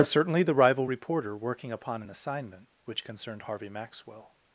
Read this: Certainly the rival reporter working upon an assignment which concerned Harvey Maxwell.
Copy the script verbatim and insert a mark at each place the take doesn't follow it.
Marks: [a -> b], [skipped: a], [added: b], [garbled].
Certainly the rival reporter working upon an assignment which concerned Harvey Maxwell.